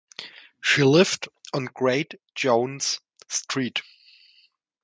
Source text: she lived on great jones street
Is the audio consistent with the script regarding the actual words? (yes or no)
yes